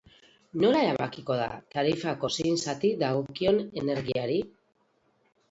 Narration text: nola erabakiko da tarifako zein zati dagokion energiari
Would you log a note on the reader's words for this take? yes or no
no